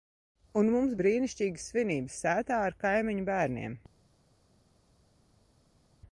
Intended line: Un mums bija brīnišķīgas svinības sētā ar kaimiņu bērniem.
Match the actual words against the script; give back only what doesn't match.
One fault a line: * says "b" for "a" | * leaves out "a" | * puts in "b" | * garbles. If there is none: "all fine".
* leaves out "bija"